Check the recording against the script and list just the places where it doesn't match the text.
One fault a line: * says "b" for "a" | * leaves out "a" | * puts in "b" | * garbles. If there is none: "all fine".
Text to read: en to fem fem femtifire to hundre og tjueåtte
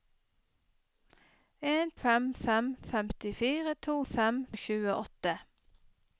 * leaves out "to"
* says "fem" for "hundre"